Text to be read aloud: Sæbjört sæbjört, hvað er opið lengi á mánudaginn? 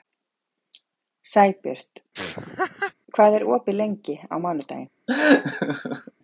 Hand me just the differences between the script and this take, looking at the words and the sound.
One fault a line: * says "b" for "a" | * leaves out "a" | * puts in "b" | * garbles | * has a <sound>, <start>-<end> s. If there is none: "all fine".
* leaves out "sæbjört"
* has a laugh, 2.1-2.9 s
* has a laugh, 5.1-6.1 s